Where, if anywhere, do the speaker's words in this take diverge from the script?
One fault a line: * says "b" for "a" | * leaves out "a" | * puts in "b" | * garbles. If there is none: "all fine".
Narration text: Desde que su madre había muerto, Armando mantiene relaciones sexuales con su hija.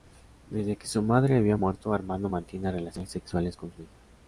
all fine